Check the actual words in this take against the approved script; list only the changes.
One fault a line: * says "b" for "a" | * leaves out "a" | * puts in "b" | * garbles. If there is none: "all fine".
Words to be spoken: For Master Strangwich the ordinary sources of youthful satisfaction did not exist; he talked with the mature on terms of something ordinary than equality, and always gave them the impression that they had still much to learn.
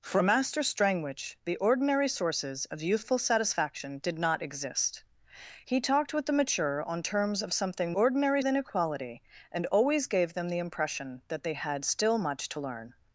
all fine